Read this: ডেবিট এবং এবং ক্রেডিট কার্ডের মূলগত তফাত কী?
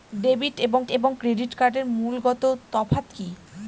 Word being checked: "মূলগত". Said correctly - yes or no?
yes